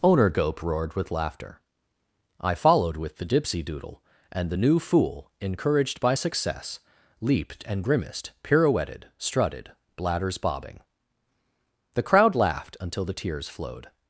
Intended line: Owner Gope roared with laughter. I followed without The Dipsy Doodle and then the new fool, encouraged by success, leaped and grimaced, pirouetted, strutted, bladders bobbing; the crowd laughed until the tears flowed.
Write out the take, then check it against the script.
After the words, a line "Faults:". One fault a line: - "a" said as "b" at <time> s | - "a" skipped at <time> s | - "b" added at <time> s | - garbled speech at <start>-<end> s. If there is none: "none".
Owner Gope roared with laughter. I followed with The Dipsy Doodle and the new fool, encouraged by success, leaped and grimaced, pirouetted, strutted, bladders bobbing; the crowd laughed until the tears flowed.
Faults:
- "without" said as "with" at 3.0 s
- "then" skipped at 4.5 s